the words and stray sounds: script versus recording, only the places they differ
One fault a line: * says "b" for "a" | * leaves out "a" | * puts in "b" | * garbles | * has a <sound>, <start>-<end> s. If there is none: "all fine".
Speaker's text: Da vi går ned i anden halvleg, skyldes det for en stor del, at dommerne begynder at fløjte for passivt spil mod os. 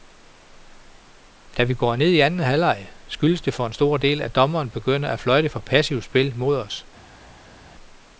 all fine